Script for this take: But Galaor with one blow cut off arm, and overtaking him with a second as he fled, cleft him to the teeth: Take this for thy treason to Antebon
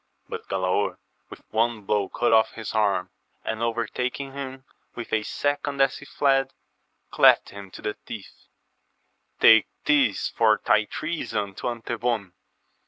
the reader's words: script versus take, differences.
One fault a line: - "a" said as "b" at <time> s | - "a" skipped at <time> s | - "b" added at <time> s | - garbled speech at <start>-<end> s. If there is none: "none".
- "his" added at 2.5 s